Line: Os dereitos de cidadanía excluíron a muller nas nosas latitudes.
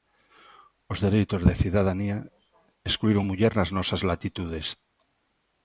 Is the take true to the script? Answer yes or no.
yes